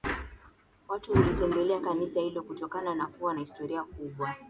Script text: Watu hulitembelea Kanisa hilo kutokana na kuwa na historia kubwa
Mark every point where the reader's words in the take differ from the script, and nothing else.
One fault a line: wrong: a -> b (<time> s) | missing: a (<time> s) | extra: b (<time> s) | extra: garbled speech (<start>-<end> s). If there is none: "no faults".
no faults